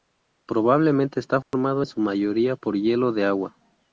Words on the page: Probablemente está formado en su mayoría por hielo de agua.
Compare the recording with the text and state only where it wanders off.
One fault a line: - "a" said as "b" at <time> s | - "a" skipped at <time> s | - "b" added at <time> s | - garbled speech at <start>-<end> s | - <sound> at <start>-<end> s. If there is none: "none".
- dropout at 1.4-1.5 s